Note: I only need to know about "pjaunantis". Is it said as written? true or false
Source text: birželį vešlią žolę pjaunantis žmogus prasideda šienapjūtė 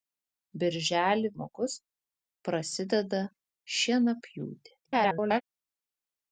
false